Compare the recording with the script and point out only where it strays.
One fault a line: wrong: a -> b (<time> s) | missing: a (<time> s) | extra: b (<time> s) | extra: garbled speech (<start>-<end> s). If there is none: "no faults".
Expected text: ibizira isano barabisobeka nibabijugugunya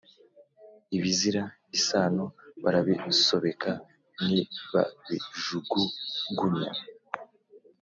no faults